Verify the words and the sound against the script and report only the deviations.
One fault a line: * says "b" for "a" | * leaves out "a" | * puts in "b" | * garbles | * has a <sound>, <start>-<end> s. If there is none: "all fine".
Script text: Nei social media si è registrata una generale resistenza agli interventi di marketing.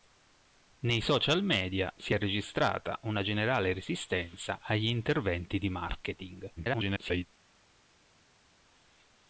* garbles